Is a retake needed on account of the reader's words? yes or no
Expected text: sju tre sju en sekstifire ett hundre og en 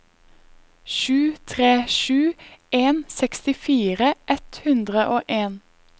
no